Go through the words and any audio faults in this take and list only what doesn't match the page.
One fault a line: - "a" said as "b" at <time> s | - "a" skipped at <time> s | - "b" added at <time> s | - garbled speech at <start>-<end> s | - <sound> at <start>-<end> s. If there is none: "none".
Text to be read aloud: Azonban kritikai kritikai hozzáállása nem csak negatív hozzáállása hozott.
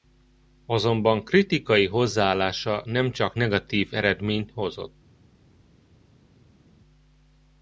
- "kritikai" skipped at 1.9 s
- "hozzáállása" said as "eredményt" at 3.9 s